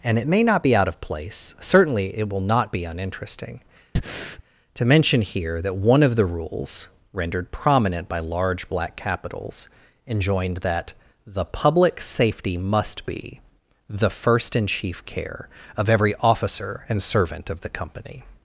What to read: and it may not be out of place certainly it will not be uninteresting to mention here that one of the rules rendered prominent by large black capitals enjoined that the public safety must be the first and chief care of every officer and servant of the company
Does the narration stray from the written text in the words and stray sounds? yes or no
yes